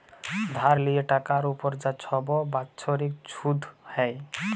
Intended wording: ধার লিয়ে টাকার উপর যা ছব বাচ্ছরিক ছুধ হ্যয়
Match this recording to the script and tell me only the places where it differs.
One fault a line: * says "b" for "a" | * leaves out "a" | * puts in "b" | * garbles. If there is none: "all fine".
all fine